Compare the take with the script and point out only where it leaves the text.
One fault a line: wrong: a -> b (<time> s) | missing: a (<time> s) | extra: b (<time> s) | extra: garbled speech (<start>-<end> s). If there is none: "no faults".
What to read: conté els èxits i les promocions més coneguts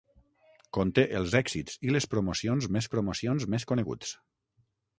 extra: promocions més (3.0 s)